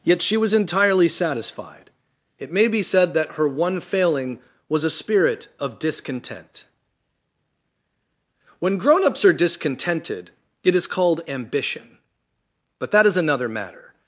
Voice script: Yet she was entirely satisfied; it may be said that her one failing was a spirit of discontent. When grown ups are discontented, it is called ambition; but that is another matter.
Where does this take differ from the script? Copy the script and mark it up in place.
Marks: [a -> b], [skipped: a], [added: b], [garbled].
Yet she was entirely satisfied; it may be said that her one failing was a spirit of discontent. When grown ups are discontented, it is called ambition; but that is another matter.